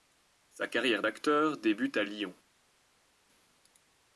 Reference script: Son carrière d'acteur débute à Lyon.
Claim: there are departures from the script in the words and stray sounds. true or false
true